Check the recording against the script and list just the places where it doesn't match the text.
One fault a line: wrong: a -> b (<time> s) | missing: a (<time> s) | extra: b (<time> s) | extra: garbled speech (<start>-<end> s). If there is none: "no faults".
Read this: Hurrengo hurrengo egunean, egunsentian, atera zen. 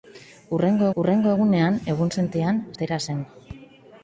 no faults